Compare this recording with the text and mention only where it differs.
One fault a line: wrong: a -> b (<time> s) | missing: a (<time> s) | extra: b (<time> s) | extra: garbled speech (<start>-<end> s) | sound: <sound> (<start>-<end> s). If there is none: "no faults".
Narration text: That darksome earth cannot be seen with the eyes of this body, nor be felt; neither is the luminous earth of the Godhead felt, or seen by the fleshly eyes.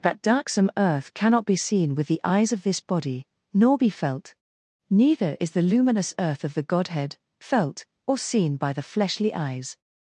no faults